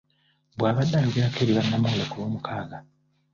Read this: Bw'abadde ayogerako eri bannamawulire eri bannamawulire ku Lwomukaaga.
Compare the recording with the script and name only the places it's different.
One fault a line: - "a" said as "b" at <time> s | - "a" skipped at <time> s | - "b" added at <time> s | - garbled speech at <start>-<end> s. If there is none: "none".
- "eri bannamawulire" skipped at 2.0 s